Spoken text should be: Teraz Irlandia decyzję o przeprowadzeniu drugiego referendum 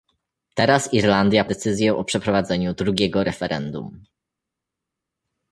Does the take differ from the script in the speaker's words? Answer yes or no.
no